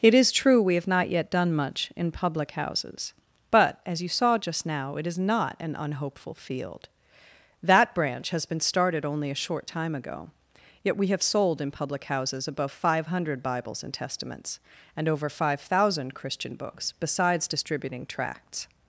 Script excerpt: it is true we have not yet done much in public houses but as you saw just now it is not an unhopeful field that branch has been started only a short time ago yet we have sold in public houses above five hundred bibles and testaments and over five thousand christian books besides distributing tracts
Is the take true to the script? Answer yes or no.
yes